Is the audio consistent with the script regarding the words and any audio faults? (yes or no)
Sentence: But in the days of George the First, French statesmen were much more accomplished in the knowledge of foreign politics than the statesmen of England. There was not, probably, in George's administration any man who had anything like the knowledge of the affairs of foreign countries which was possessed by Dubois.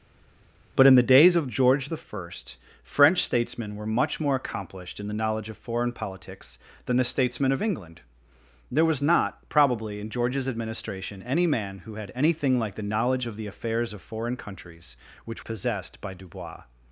no